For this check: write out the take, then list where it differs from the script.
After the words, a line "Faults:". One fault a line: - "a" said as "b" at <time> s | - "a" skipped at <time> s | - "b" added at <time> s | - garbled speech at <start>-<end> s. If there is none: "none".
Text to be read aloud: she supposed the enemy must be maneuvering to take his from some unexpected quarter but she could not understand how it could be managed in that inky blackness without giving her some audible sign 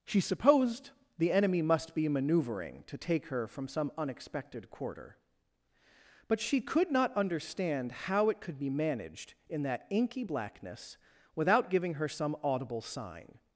she supposed the enemy must be maneuvering to take her from some unexpected quarter but she could not understand how it could be managed in that inky blackness without giving her some audible sign
Faults:
- "his" said as "her" at 3.3 s